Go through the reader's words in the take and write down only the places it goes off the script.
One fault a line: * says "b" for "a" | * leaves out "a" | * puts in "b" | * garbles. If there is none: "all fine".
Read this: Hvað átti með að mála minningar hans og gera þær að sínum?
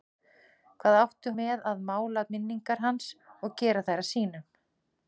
all fine